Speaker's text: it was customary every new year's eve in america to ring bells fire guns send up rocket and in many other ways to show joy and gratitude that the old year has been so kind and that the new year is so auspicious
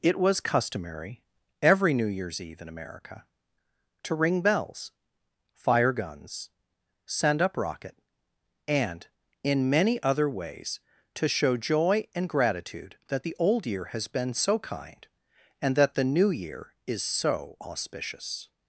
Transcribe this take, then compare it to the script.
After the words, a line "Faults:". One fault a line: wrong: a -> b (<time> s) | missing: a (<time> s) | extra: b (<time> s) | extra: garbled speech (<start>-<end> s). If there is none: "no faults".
it was customary every new year's eve in america to ring bells fire guns send up rocket and in many other ways to show joy and gratitude that the old year has been so kind and that the new year is so auspicious
Faults:
no faults